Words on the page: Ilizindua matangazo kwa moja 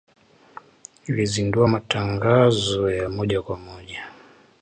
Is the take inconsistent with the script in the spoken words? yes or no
yes